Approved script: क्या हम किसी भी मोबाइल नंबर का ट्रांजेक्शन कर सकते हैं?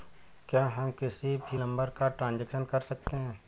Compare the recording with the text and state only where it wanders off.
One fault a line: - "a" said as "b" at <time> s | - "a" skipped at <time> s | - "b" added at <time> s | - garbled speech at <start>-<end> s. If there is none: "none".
- "मोबाइल" skipped at 1.6 s